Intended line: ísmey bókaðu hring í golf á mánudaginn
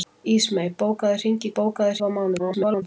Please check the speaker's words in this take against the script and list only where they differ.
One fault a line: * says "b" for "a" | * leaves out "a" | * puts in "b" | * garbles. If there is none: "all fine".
* says "bókaðu" for "golf"
* garbles